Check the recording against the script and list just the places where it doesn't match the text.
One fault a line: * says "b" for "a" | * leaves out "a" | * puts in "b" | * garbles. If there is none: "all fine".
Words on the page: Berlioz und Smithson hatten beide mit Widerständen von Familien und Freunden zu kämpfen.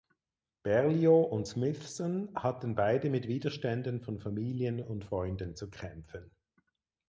all fine